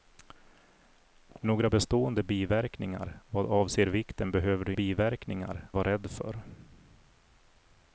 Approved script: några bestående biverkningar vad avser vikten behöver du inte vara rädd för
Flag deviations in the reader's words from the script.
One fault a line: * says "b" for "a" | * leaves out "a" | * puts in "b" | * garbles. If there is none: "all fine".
* says "biverkningar" for "inte"